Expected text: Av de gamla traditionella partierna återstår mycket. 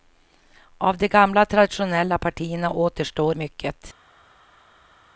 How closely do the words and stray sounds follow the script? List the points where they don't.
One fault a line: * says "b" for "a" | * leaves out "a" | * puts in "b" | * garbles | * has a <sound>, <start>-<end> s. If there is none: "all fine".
all fine